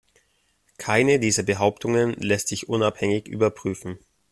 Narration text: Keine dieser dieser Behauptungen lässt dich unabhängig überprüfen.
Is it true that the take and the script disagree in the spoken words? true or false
true